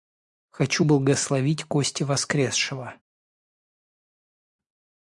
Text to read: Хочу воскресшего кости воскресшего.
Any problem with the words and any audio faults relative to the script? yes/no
yes